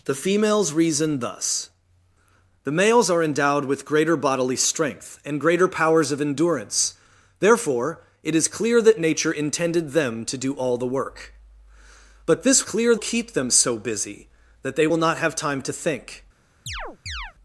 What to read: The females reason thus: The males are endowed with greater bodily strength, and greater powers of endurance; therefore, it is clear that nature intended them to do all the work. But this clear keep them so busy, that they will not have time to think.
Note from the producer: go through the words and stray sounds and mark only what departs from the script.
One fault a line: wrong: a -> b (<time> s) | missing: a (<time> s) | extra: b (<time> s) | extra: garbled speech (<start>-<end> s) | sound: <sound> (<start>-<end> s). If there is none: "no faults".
sound: chirp (16.7-17.3 s)